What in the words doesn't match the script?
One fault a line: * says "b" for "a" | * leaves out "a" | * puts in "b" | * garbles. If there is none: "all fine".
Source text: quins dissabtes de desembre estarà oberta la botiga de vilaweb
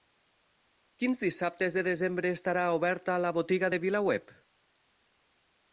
all fine